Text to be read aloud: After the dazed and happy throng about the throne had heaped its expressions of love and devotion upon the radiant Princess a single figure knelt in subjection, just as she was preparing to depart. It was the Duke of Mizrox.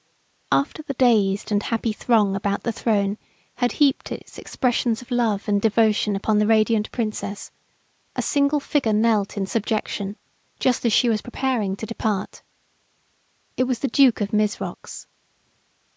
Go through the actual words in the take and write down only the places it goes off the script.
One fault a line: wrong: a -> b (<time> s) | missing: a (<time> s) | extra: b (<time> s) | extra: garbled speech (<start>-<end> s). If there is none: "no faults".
no faults